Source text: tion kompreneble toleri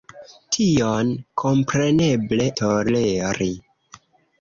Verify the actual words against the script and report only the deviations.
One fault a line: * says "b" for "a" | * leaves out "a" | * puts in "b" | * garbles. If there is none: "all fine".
all fine